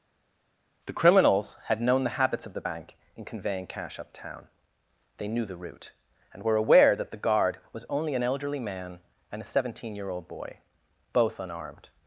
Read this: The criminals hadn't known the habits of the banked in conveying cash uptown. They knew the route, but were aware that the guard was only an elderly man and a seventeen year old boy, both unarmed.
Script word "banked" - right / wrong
wrong